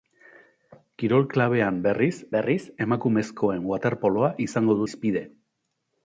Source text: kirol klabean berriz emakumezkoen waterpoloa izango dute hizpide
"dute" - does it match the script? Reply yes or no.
no